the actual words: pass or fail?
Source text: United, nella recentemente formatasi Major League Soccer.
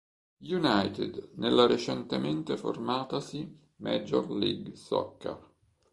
pass